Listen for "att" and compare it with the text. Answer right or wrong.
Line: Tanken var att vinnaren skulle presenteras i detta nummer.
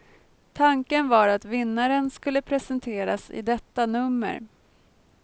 right